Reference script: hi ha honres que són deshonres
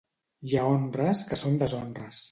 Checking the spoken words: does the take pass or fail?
pass